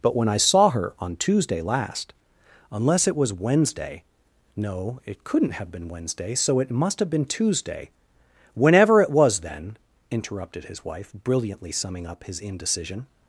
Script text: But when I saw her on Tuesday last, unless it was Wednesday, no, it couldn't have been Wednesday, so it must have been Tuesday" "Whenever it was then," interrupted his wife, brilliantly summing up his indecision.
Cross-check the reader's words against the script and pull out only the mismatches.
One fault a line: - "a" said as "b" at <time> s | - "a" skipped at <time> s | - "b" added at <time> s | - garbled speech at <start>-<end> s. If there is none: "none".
none